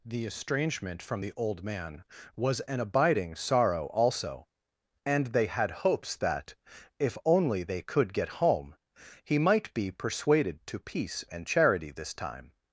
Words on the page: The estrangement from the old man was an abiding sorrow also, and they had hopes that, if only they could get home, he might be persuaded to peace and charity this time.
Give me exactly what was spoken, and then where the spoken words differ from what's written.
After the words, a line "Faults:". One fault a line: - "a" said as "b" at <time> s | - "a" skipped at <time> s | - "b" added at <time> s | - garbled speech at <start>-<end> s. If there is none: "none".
The estrangement from the old man was an abiding sorrow also, and they had hopes that, if only they could get home, he might be persuaded to peace and charity this time.
Faults:
none